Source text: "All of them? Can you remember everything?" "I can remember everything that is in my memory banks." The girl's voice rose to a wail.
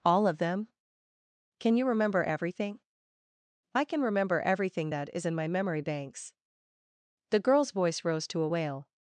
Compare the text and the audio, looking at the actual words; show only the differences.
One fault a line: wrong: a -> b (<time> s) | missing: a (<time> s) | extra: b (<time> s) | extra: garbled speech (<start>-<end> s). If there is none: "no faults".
no faults